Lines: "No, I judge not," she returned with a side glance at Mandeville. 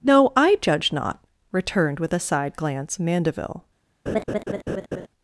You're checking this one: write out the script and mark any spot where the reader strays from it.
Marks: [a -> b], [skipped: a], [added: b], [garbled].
"No, I judge not," [skipped: she] returned with a side glance [skipped: at] Mandeville.